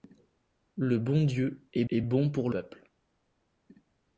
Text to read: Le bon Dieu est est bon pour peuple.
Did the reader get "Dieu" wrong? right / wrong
right